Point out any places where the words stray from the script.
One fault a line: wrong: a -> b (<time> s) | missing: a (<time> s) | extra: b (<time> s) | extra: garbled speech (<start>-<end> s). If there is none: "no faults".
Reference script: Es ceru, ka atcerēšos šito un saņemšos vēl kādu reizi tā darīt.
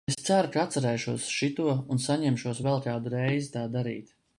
no faults